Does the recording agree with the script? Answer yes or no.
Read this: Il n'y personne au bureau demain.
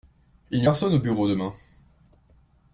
yes